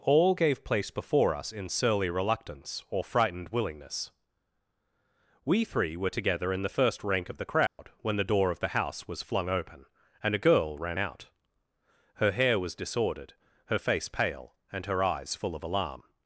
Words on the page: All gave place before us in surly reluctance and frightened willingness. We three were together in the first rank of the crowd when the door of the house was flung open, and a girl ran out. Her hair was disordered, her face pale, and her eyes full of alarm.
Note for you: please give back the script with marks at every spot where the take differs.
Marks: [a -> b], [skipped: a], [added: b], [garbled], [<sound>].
All gave place before us in surly reluctance [and -> or] frightened willingness. We three were together in the first rank of the crowd [dropout] when the door of the house was flung open, and a girl ran out. Her hair was disordered, her face pale, and her eyes full of alarm.